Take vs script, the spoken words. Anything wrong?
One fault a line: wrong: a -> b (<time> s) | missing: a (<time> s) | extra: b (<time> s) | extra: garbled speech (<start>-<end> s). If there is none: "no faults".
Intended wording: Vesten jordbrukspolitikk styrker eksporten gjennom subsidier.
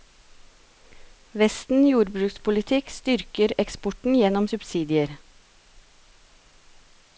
no faults